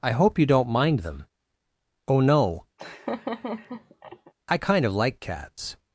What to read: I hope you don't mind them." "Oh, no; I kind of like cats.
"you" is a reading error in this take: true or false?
false